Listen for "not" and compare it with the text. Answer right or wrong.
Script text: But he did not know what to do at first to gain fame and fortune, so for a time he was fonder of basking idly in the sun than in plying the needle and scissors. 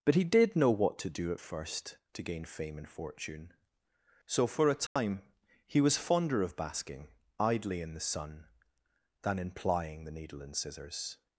wrong